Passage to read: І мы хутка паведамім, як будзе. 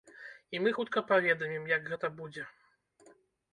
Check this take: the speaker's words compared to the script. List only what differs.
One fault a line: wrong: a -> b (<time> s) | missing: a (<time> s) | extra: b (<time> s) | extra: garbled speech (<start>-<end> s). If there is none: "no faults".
extra: гэта (1.9 s)